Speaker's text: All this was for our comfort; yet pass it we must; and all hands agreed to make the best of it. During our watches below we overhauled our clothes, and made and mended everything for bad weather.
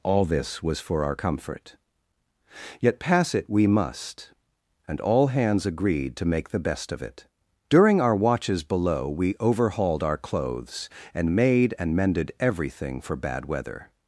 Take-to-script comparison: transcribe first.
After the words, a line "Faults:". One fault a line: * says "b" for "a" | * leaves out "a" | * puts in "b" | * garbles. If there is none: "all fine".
All this was for our comfort; yet pass it we must; and all hands agreed to make the best of it. During our watches below we overhauled our clothes, and made and mended everything for bad weather.
Faults:
all fine